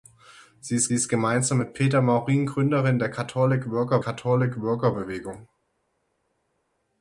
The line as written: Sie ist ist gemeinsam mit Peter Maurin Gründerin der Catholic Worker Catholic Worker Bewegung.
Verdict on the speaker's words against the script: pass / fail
pass